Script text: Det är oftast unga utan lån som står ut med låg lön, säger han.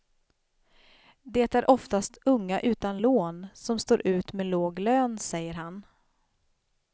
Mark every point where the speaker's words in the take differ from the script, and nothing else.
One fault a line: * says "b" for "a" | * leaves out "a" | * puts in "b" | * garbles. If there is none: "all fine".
all fine